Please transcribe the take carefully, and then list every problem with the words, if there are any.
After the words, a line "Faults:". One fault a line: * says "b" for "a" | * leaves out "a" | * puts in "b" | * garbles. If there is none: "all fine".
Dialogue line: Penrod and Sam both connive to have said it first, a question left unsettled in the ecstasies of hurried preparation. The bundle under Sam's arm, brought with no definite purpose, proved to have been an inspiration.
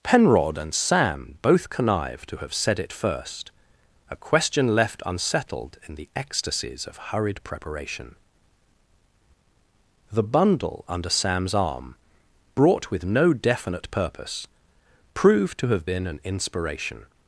Penrod and Sam both connive to have said it first, a question left unsettled in the ecstasies of hurried preparation. The bundle under Sam's arm, brought with no definite purpose, proved to have been an inspiration.
Faults:
all fine